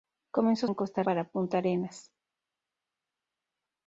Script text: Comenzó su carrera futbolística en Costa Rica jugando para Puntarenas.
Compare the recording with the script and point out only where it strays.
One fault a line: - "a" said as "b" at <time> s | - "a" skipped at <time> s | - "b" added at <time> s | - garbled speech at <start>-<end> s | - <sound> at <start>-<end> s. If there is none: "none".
- "su carrera futbolística" skipped at 0.7 s
- "Rica jugando" skipped at 1.0 s